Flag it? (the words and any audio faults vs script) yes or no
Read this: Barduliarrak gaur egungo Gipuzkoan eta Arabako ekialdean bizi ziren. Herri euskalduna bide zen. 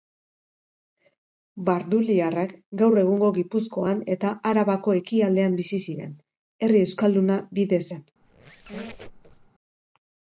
yes